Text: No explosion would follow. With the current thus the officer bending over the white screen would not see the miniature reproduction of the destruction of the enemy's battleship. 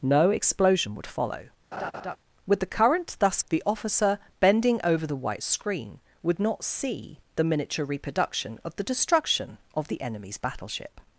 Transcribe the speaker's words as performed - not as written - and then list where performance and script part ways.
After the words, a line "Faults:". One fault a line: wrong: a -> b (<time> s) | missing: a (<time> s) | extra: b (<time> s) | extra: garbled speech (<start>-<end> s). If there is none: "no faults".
No explosion would follow. With the current thus the officer bending over the white screen would not see the miniature reproduction of the destruction of the enemy's battleship.
Faults:
no faults